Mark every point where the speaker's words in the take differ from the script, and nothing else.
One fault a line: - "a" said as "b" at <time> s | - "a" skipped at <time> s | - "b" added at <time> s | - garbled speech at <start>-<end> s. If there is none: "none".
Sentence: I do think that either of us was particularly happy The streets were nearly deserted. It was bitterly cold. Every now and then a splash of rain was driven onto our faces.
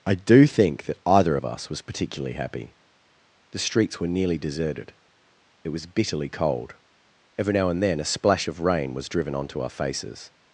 none